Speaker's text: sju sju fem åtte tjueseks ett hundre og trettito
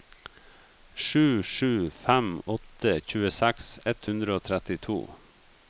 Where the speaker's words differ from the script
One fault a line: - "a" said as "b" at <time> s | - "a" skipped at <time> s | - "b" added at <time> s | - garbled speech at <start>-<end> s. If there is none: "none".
none